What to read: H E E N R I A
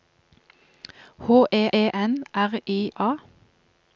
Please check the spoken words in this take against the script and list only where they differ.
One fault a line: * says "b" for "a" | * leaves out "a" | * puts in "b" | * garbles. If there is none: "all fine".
all fine